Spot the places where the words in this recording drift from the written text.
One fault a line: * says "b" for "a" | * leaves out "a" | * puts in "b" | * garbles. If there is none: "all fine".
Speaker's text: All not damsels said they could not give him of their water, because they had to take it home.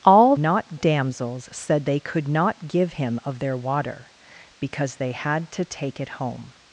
all fine